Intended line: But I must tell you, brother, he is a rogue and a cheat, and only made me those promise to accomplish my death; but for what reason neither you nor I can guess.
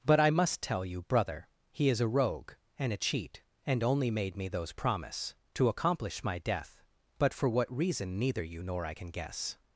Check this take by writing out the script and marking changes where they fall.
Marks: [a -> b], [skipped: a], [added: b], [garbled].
But I must tell you, brother, he is a rogue and a cheat, and only made me those promise to accomplish my death; but for what reason neither you nor I can guess.